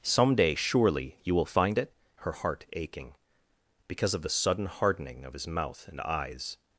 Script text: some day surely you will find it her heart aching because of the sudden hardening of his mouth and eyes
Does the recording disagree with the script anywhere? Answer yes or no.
no